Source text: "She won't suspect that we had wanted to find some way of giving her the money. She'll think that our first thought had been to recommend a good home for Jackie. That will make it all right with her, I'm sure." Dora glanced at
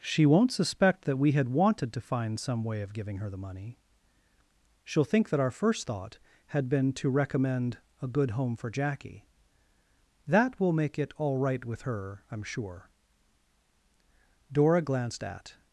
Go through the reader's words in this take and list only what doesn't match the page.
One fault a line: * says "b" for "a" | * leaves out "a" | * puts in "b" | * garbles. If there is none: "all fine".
all fine